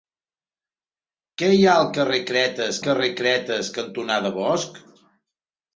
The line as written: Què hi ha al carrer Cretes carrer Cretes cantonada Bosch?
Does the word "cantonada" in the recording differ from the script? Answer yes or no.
no